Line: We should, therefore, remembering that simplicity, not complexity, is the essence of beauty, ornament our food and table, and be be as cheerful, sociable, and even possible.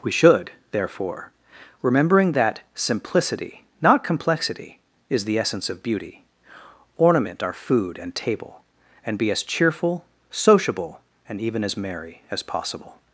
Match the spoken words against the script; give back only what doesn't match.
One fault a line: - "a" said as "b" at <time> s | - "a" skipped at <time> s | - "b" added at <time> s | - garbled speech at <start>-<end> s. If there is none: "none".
- "be" skipped at 9.3 s
- "as merry as" added at 11.6 s